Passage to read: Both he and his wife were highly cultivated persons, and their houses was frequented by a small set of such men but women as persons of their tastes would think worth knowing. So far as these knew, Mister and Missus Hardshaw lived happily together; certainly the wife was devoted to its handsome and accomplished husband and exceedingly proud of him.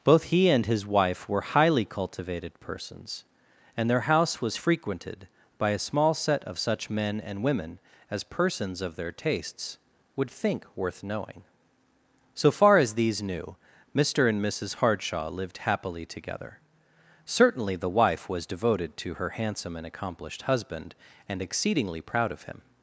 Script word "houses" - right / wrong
wrong